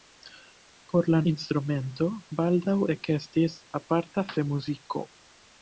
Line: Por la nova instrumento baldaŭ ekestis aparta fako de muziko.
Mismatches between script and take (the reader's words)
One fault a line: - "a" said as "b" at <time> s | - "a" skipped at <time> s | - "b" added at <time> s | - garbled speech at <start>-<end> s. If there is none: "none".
- "nova" skipped at 1.2 s
- "fako" skipped at 4.3 s